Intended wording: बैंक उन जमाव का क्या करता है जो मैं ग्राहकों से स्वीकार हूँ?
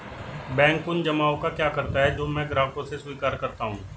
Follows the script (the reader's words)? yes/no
no